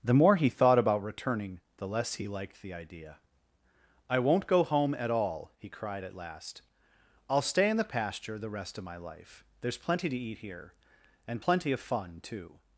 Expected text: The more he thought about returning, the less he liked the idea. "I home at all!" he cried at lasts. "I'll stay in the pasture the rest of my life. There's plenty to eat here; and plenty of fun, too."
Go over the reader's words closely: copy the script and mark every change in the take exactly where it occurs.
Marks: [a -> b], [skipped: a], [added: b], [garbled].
The more he thought about returning, the less he liked the idea. "I [added: won't go] home at all!" he cried at [lasts. -> last] "I'll stay in the pasture the rest of my life. There's plenty to eat here; and plenty of fun, too."